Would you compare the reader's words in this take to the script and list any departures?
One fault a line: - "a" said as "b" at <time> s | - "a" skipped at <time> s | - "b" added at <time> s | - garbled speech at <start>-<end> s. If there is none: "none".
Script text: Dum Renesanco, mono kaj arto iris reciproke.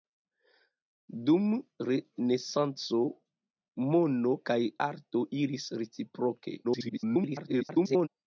- garbled speech at 6.6-8.1 s